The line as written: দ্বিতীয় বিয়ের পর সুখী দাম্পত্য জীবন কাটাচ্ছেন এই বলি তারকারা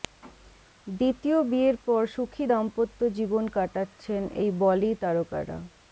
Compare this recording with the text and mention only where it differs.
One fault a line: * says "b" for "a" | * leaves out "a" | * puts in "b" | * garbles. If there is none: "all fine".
all fine